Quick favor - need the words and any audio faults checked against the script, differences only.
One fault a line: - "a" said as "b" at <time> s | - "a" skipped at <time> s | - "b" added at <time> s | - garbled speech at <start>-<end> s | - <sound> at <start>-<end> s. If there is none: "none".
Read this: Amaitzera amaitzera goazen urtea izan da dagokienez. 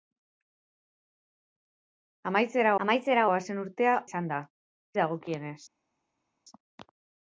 none